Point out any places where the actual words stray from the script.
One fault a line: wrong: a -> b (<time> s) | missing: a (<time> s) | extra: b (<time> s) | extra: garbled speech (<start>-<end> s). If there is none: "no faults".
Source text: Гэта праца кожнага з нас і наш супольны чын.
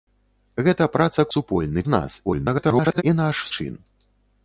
wrong: кожнага -> супольны (1.3 s)
extra: garbled speech (2.2-3.0 s)
missing: супольны (3.4 s)